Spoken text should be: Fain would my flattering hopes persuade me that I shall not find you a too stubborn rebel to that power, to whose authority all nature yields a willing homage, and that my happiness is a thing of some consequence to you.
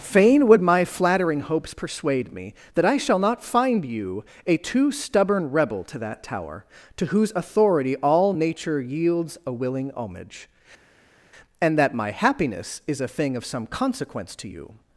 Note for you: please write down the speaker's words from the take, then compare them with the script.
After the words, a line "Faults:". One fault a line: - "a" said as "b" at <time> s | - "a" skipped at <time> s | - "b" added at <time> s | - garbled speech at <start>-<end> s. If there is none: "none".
Fain would my flattering hopes persuade me that I shall not find you a too stubborn rebel to that tower, to whose authority all nature yields a willing homage, and that my happiness is a thing of some consequence to you.
Faults:
- "power" said as "tower" at 6.2 s